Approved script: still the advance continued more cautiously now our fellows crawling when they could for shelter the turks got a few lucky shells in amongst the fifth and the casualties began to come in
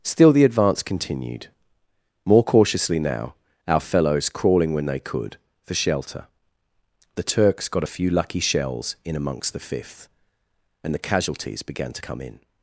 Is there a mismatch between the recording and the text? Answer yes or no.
no